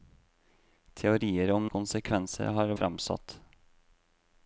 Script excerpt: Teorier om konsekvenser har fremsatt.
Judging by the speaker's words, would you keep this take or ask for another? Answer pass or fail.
pass